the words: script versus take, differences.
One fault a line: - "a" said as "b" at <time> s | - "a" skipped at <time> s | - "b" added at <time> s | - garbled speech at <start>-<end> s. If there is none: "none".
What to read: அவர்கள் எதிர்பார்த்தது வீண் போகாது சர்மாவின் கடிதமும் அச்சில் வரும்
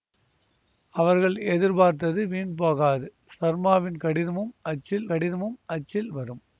- "கடிதமும் அச்சில்" added at 5.1 s